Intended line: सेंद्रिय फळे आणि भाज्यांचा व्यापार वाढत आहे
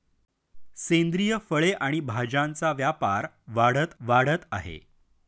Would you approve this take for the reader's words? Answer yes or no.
no